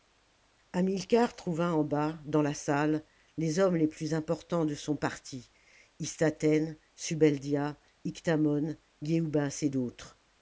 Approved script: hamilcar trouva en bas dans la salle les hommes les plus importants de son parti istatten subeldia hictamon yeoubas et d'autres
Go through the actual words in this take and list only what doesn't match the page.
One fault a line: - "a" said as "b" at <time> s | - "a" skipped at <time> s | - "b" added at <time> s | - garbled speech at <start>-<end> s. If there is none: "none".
none